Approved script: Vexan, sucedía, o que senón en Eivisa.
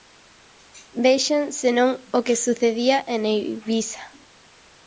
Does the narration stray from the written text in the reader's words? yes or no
yes